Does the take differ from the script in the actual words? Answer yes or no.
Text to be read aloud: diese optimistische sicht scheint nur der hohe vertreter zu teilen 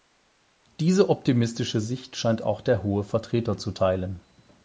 yes